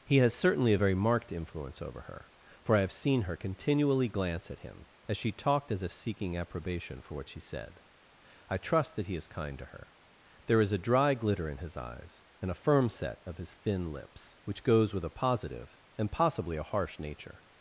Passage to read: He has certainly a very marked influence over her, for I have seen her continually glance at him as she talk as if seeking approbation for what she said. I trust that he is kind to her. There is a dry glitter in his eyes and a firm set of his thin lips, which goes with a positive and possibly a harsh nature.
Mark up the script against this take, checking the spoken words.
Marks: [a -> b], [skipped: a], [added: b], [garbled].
He has certainly a very marked influence over her, for I have seen her continually glance at him as she [talk -> talked] as if seeking approbation for what she said. I trust that he is kind to her. There is a dry glitter in his eyes and a firm set of his thin lips, which goes with a positive and possibly a harsh nature.